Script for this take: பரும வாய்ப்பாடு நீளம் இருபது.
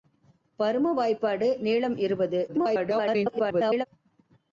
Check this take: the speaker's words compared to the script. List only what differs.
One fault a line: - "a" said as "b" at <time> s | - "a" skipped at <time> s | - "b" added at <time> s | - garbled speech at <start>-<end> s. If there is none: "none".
- garbled speech at 2.5-3.9 s